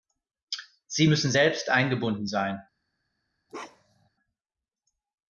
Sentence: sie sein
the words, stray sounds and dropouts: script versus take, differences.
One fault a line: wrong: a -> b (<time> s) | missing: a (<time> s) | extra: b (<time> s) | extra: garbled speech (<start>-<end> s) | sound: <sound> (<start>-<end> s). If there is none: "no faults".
extra: müssen selbst eingebunden (1.0 s)
sound: bark (3.5-4.1 s)